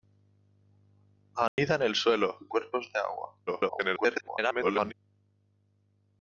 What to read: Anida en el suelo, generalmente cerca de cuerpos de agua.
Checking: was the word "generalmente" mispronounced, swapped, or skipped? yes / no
yes